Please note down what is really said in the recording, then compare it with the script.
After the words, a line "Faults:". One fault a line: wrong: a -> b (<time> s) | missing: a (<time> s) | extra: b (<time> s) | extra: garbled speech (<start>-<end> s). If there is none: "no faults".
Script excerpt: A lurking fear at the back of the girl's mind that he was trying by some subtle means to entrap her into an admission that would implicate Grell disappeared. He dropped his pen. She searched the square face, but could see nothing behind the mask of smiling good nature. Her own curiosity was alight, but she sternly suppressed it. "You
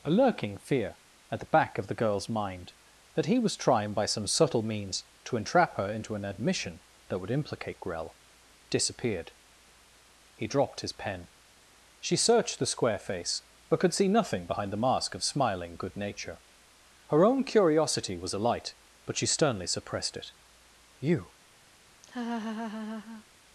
A lurking fear at the back of the girl's mind that he was trying by some subtle means to entrap her into an admission that would implicate Grell disappeared. He dropped his pen. She searched the square face, but could see nothing behind the mask of smiling good nature. Her own curiosity was alight, but she sternly suppressed it. "You
Faults:
no faults